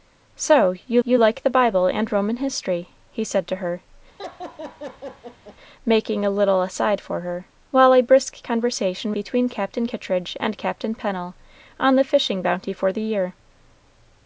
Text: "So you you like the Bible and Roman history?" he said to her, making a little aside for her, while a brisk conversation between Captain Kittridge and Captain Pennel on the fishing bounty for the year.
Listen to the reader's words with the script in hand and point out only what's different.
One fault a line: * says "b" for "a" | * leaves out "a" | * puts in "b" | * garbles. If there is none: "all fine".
all fine